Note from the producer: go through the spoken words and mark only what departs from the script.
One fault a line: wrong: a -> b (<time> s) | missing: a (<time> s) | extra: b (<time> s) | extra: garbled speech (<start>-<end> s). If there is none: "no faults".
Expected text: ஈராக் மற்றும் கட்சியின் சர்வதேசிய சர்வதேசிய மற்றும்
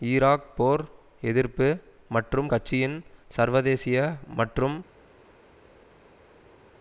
extra: போர் எதிர்ப்பு (0.6 s)
missing: சர்வதேசிய (4.0 s)